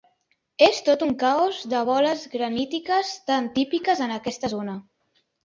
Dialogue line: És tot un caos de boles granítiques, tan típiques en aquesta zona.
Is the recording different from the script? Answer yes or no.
no